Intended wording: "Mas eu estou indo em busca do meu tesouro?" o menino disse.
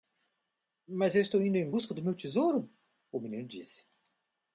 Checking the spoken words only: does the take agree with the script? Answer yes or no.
yes